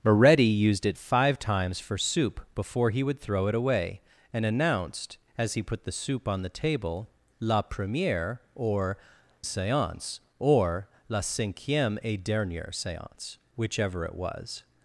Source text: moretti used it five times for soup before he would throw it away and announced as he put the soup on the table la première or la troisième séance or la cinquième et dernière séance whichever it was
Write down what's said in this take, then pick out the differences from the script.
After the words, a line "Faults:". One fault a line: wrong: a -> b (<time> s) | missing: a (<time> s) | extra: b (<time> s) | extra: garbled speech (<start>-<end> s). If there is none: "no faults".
moretti used it five times for soup before he would throw it away and announced as he put the soup on the table la première or séance or la cinquième et dernière séance whichever it was
Faults:
missing: la troisième (9.0 s)